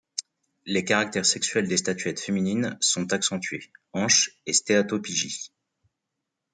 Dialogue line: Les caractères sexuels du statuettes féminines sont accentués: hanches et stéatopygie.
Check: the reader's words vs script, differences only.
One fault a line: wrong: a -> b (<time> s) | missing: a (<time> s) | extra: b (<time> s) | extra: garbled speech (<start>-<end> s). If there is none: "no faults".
wrong: du -> des (1.7 s)